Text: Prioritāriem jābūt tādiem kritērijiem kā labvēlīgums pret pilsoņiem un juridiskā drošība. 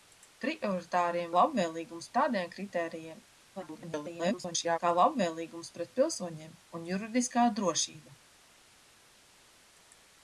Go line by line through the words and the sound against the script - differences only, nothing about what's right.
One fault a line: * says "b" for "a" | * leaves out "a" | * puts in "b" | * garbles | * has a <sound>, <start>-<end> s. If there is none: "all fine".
* says "labvēlīgums" for "jābūt"
* garbles